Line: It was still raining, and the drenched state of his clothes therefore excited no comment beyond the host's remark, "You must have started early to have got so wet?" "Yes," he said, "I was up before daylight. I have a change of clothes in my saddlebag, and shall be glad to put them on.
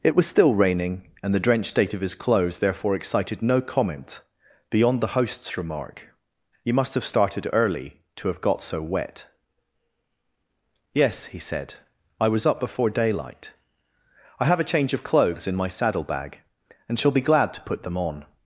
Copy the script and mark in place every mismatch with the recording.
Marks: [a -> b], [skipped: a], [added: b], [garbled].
It was still raining, and the drenched state of his clothes therefore excited no comment beyond the host's remark, "You must have started early to have got so wet?" "Yes," he said, "I was up before daylight. I have a change of clothes in my saddlebag, and shall be glad to put them on.